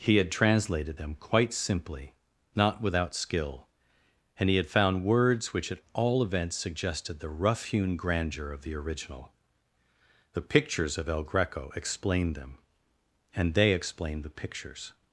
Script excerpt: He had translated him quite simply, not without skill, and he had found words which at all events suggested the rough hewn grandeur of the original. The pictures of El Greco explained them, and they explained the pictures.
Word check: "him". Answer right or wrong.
wrong